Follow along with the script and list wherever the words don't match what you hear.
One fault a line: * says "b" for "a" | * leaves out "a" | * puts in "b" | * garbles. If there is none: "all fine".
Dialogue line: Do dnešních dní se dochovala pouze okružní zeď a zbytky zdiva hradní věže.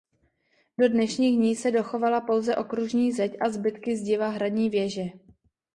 all fine